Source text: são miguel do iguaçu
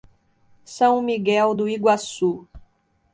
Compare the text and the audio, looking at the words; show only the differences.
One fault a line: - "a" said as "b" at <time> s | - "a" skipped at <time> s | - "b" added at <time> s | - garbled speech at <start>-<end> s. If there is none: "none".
none